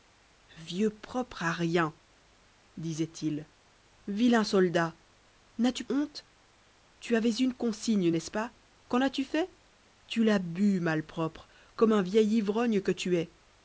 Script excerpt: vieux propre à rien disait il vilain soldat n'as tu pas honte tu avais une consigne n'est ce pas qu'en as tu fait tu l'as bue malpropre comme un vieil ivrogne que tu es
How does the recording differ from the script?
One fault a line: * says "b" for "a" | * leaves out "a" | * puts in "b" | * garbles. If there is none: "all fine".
* leaves out "pas"